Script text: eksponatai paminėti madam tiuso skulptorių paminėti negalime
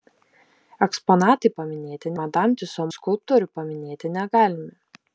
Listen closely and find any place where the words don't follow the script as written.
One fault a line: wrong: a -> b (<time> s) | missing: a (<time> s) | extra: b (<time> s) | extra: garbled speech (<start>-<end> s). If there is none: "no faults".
no faults